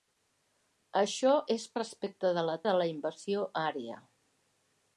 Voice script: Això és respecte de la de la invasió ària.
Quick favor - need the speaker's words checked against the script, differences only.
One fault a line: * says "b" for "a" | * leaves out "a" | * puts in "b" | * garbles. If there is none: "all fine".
all fine